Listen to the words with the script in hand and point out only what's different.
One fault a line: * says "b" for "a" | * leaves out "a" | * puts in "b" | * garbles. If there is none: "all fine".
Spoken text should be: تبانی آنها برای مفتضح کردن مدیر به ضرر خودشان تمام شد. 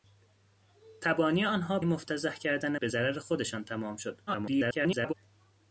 * leaves out "برای"
* leaves out "مدیر"
* garbles